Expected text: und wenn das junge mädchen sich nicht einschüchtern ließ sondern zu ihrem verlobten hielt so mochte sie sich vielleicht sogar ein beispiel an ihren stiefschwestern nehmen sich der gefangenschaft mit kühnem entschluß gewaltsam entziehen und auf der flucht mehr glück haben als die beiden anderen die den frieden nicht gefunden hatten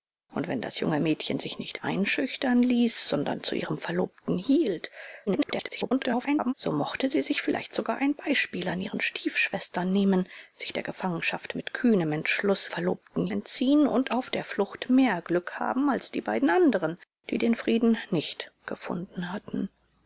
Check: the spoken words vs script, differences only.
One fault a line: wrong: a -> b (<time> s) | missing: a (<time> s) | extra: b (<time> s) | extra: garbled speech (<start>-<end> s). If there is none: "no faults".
extra: garbled speech (5.3-6.5 s)
wrong: gewaltsam -> verlobten (12.7 s)